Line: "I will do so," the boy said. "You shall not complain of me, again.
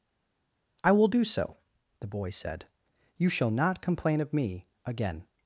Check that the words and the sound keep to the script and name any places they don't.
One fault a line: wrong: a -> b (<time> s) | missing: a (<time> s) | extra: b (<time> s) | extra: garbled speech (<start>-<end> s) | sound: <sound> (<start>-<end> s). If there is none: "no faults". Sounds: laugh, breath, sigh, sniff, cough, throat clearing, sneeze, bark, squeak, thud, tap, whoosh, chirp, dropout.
no faults